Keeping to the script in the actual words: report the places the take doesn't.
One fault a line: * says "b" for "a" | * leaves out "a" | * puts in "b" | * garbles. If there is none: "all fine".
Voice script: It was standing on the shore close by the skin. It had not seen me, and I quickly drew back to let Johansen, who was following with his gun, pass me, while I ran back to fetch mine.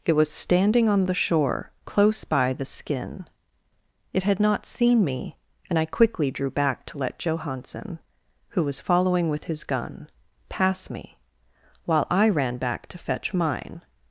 all fine